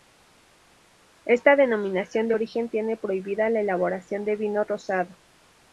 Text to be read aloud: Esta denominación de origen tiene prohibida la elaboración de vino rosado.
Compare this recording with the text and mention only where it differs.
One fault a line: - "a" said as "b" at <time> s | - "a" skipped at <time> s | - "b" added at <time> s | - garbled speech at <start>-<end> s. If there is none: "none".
none